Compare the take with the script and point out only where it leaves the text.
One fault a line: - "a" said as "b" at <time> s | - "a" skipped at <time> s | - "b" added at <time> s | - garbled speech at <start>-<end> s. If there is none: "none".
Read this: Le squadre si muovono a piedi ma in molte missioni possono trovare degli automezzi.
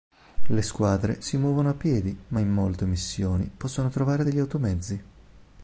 none